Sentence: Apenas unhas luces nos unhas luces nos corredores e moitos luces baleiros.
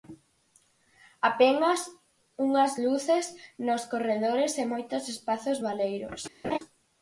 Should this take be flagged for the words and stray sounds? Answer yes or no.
yes